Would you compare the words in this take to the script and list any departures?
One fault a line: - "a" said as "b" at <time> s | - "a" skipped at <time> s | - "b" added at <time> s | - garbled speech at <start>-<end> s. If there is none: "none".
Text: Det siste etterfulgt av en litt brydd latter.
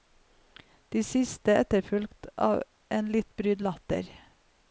none